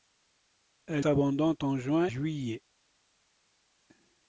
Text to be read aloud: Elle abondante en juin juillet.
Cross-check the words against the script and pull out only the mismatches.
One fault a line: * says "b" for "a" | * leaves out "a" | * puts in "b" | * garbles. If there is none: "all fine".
all fine